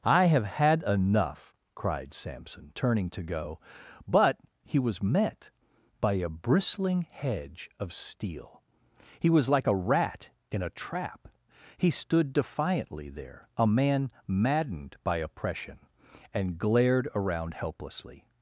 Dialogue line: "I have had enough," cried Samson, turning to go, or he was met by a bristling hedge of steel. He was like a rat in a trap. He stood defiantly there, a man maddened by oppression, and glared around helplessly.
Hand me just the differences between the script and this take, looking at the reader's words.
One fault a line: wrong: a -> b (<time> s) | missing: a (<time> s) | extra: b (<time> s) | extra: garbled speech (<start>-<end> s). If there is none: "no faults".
wrong: or -> but (4.1 s)